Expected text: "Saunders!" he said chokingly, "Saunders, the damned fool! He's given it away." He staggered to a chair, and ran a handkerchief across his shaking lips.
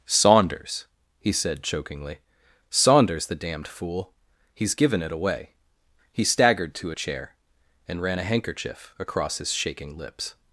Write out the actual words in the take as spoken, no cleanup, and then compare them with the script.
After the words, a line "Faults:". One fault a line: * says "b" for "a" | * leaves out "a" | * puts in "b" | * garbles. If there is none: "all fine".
"Saunders!" he said chokingly, "Saunders, the damned fool! He's given it away." He staggered to a chair, and ran a handkerchief across his shaking lips.
Faults:
all fine